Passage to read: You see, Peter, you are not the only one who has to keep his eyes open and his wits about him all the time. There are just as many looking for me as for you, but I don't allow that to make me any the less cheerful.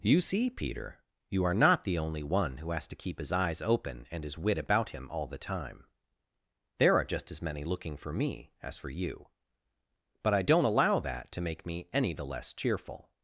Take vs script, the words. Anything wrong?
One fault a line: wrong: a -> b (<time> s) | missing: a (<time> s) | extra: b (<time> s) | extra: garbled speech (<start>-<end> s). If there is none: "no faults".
wrong: wits -> wit (4.4 s)